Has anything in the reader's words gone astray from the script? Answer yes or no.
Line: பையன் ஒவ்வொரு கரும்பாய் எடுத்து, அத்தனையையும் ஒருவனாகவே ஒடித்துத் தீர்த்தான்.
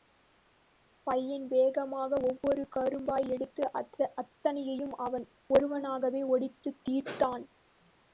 yes